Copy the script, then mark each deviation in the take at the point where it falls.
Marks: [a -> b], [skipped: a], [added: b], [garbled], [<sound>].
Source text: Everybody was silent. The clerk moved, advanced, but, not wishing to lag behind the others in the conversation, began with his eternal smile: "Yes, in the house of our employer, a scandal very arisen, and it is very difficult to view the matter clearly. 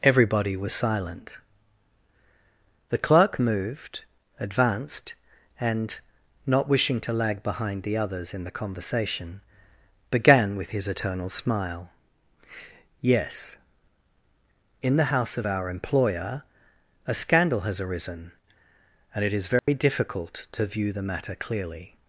Everybody was silent. The clerk moved, advanced, [but, -> and] not wishing to lag behind the others in the conversation, began with his eternal smile: "Yes, in the house of our employer, a scandal [very -> has] arisen, and it is very [dropout] difficult to view the matter clearly.